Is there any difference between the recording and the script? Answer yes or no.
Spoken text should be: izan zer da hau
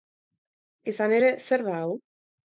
yes